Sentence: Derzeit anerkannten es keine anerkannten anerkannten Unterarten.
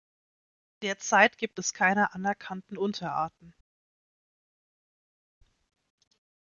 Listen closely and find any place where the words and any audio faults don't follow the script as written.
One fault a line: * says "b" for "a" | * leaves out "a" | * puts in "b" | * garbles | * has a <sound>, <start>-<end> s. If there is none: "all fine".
* says "gibt" for "anerkannten"
* leaves out "anerkannten"